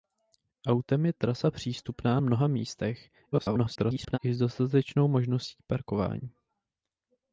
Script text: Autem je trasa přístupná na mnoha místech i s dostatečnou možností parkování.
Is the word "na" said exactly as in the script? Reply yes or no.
no